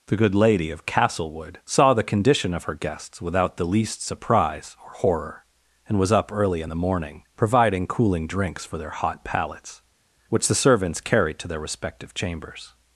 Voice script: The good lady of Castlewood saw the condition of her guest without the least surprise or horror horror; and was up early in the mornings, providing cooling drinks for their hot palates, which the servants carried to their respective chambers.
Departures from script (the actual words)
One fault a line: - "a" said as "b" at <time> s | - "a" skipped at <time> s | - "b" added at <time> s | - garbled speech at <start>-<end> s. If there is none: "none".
- "guest" said as "guests" at 2.7 s
- "horror" skipped at 5.4 s
- "mornings" said as "morning" at 6.8 s